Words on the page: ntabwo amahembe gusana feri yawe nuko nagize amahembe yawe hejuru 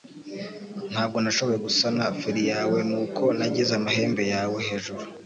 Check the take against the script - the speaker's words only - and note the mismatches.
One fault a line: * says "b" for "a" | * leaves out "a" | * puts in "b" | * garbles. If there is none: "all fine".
* says "nashoboye" for "amahembe"